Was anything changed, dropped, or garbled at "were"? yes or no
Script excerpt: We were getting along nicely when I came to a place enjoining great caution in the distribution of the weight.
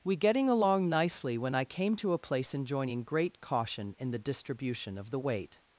yes